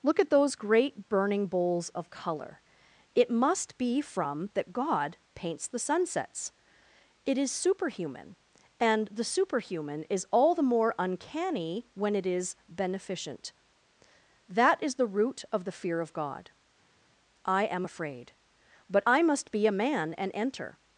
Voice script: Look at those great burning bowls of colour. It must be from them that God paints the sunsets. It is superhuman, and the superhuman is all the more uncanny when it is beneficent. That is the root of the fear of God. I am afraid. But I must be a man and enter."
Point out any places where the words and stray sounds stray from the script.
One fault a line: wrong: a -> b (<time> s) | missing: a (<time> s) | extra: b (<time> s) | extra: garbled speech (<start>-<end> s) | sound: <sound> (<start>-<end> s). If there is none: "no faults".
missing: them (4.5 s)